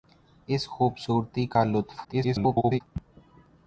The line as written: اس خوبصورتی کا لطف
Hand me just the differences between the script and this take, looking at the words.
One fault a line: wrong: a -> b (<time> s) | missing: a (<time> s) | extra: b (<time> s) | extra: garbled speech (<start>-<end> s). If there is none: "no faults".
extra: garbled speech (2.0-2.8 s)